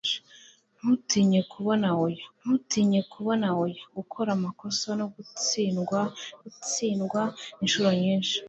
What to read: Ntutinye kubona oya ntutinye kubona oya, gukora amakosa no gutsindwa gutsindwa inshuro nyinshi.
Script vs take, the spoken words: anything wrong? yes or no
no